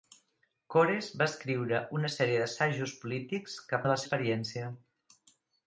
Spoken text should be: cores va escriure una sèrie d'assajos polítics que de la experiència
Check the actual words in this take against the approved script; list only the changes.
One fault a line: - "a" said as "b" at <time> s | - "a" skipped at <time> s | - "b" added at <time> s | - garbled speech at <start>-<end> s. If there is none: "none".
none